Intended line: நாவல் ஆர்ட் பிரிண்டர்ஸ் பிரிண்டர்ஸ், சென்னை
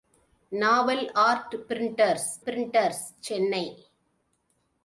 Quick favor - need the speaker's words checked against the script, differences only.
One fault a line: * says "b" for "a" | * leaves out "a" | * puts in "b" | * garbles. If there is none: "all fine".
all fine